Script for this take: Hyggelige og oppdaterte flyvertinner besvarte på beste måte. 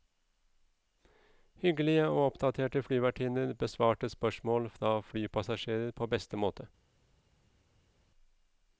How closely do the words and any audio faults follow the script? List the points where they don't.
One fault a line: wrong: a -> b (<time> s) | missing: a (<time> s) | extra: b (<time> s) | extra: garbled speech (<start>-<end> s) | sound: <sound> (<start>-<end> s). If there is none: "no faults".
extra: spørsmål fra flypassasjerer (4.1 s)